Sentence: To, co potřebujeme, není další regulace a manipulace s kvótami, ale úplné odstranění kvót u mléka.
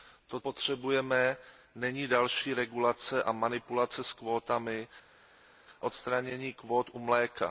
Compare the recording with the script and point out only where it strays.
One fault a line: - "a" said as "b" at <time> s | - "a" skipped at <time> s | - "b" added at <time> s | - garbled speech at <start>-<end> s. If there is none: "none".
- "co" skipped at 0.4 s
- "ale úplné" skipped at 4.9 s